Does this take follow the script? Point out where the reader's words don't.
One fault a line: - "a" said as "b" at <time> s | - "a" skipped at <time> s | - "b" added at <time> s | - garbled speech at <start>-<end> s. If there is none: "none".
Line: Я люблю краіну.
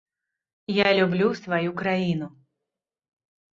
- "сваю" added at 1.4 s